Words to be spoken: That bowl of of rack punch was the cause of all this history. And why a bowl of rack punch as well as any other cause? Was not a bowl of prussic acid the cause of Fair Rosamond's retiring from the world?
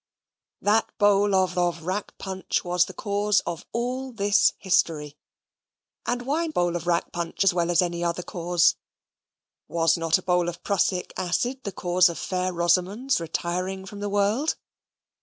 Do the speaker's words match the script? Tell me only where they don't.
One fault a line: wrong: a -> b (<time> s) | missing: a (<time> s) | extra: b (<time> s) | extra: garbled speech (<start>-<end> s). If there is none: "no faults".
no faults